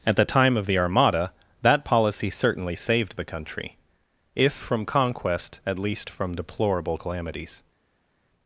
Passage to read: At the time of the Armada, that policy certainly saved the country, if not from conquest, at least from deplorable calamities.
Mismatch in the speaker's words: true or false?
true